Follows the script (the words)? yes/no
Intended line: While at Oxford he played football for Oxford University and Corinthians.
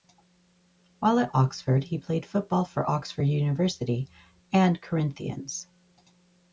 yes